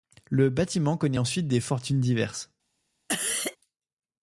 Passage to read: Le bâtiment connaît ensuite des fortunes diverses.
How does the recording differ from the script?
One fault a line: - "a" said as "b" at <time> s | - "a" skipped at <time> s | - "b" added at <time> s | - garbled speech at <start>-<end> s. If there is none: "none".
none